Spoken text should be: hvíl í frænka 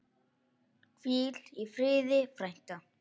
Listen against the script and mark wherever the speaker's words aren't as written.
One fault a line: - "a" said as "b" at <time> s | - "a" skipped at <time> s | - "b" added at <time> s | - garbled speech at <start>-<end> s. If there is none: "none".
- "friði" added at 1.8 s